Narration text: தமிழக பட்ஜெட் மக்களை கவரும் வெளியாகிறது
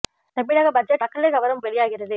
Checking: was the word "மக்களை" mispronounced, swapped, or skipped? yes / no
no